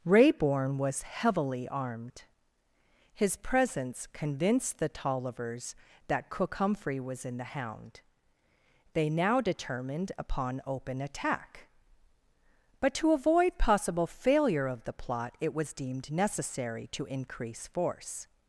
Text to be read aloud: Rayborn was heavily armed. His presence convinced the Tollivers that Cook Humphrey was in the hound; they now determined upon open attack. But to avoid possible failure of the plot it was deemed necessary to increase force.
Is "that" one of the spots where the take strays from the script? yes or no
no